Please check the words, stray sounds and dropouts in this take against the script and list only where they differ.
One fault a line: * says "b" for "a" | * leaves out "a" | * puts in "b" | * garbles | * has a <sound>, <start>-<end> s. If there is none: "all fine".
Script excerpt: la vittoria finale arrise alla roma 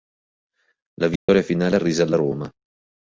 * has a dropout, 1.2-1.3 s